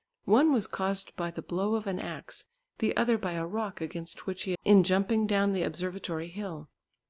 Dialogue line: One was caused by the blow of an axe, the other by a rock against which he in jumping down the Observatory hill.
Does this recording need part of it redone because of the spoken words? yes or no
no